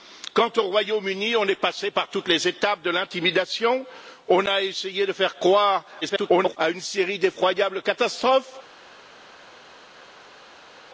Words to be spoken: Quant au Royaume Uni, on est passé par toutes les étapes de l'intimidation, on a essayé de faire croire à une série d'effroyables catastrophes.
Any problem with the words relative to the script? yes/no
yes